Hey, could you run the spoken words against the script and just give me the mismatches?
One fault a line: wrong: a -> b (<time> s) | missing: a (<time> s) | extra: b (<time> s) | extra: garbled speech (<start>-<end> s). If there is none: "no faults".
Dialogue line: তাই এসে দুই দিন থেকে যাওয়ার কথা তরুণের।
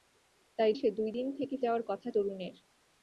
no faults